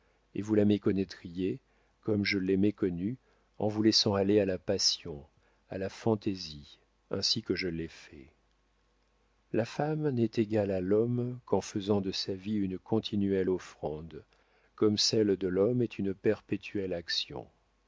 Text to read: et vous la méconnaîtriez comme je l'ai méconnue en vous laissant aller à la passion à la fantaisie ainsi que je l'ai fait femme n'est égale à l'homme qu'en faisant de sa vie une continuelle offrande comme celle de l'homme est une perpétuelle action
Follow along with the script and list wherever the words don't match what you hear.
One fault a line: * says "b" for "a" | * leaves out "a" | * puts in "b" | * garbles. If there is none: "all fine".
* puts in "la"